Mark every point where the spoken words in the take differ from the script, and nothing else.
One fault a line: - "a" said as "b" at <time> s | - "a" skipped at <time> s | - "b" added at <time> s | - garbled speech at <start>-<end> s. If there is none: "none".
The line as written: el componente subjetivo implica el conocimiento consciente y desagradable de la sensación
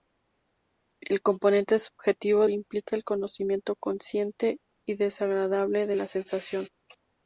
none